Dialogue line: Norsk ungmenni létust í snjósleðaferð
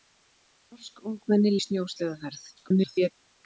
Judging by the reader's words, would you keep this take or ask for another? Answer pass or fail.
fail